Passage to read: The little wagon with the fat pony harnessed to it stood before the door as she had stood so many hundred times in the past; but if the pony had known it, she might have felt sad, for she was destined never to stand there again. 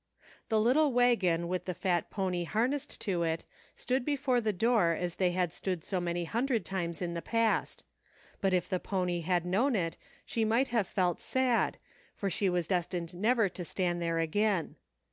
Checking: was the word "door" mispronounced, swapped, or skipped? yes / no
no